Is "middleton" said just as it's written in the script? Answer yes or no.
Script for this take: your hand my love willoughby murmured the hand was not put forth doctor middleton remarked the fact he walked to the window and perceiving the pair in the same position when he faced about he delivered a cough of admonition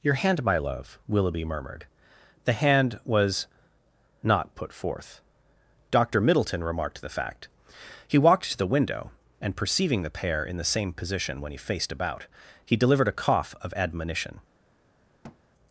yes